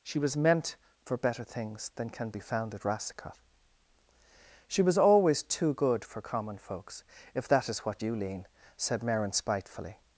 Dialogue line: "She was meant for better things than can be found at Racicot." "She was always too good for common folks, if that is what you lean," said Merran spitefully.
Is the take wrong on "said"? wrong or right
right